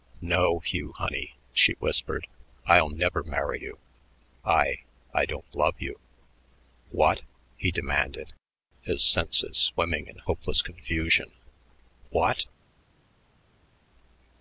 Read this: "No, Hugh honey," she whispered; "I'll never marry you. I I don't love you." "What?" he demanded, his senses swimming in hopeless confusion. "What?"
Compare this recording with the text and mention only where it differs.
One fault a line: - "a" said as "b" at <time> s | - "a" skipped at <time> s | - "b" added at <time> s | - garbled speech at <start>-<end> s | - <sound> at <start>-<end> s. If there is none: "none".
none